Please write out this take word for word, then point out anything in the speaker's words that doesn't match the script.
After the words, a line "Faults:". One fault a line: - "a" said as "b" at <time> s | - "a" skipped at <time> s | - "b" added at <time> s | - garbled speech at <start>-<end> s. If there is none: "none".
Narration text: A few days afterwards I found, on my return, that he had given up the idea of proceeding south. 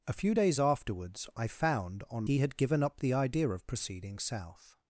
A few days afterwards I found, on he had given up the idea of proceeding south.
Faults:
- "my return that" skipped at 2.2 s